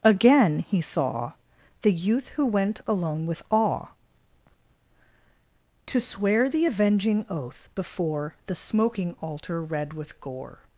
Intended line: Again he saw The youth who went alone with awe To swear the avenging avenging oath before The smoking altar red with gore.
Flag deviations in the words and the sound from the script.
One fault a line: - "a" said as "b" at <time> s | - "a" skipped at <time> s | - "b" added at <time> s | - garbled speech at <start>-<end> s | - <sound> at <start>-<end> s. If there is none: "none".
- "avenging" skipped at 7.2 s